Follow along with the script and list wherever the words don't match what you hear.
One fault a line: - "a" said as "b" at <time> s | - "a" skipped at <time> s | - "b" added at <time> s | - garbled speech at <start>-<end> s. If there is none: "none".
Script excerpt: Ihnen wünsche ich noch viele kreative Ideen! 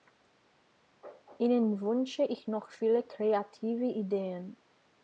none